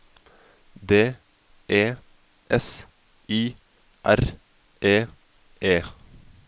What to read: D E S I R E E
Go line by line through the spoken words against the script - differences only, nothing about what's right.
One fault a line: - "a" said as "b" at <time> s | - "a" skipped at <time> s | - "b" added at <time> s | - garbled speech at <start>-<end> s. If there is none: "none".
none